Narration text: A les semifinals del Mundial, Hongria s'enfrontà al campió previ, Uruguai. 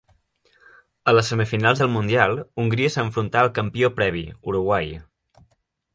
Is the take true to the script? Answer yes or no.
yes